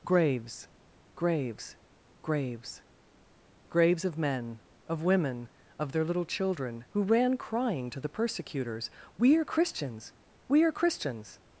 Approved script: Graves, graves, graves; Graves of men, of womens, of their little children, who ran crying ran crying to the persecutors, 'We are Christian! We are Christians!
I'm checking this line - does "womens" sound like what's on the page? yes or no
no